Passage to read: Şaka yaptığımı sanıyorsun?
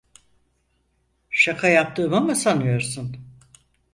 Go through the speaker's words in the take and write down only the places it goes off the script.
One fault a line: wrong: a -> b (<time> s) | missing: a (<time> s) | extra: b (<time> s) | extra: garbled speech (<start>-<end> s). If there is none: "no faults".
extra: mı (2.2 s)